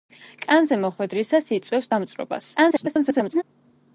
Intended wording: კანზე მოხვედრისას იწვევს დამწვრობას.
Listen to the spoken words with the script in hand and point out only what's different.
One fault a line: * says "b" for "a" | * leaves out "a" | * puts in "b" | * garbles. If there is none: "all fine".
* garbles